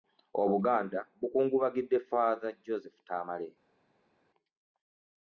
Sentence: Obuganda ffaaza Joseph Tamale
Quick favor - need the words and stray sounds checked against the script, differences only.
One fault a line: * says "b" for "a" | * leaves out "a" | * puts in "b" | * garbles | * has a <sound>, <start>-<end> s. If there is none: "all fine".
* puts in "bukungubagidde"